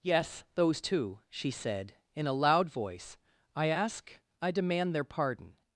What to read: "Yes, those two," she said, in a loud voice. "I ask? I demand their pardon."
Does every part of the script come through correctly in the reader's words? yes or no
yes